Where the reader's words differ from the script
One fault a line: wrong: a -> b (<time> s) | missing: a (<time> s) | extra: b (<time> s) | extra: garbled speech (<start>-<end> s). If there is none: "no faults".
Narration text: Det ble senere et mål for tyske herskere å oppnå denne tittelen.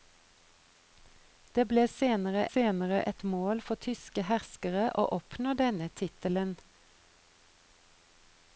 extra: senere (2.5 s)